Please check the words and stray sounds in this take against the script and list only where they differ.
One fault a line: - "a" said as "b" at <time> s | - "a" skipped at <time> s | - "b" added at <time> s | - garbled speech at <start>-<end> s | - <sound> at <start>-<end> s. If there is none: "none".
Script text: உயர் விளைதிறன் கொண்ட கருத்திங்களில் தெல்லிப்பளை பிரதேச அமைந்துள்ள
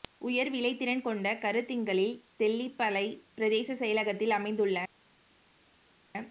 - "செயலகத்தில்" added at 3.8 s